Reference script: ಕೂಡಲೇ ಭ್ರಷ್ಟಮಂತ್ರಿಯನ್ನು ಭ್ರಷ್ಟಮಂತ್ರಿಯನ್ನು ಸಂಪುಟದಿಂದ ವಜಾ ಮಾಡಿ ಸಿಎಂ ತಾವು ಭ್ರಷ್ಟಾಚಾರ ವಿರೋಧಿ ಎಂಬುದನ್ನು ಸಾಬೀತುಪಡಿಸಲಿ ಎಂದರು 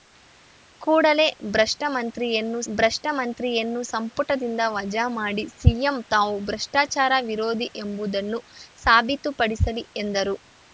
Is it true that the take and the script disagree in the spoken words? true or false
false